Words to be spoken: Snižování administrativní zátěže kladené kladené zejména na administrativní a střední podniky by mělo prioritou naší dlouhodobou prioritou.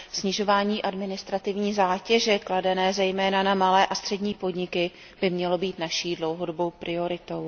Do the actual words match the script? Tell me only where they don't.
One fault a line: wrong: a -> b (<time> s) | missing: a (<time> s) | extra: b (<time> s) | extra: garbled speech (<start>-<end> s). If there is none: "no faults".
missing: kladené (2.9 s)
wrong: administrativní -> malé (3.5 s)
wrong: prioritou -> být (5.6 s)